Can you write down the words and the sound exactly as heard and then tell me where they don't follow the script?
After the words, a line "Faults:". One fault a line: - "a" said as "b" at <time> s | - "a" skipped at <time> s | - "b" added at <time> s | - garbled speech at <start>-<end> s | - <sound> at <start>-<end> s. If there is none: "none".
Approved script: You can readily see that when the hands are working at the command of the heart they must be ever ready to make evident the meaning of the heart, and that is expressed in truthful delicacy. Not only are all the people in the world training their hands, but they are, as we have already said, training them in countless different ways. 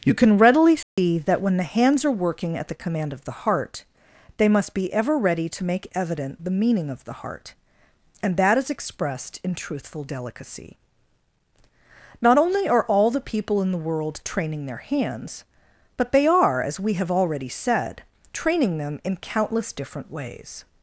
You can readily see that when the hands are working at the command of the heart they must be ever ready to make evident the meaning of the heart, and that is expressed in truthful delicacy. Not only are all the people in the world training their hands, but they are, as we have already said, training them in countless different ways.
Faults:
- dropout at 0.8-1.0 s